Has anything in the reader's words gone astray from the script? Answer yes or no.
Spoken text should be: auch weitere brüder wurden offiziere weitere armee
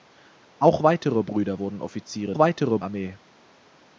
no